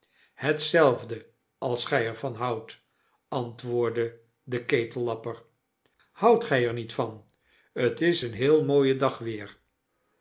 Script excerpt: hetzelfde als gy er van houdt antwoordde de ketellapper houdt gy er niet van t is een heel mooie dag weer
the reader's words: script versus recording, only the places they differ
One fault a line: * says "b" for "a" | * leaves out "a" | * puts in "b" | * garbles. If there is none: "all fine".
all fine